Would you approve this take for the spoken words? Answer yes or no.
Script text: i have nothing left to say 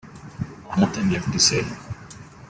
no